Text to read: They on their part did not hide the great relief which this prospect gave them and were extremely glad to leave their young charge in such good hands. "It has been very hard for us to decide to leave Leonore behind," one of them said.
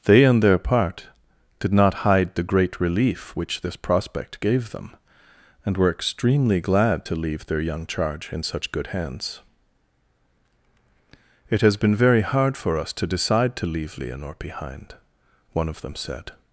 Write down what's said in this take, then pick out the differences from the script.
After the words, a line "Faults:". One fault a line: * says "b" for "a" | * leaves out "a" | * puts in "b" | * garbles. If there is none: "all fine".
They on their part did not hide the great relief which this prospect gave them and were extremely glad to leave their young charge in such good hands. "It has been very hard for us to decide to leave Leonore behind," one of them said.
Faults:
all fine